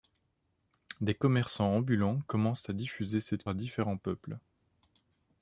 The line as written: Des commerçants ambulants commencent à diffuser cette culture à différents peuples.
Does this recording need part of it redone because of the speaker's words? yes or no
yes